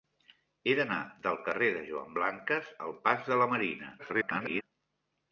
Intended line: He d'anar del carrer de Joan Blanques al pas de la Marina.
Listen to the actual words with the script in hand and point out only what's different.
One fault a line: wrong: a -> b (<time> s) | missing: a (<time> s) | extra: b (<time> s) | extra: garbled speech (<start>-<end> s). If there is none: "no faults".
extra: garbled speech (4.0-4.6 s)